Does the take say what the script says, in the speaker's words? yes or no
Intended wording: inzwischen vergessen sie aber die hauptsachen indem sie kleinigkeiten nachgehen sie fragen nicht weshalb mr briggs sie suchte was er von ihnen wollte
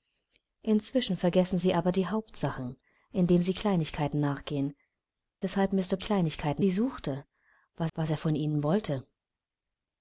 no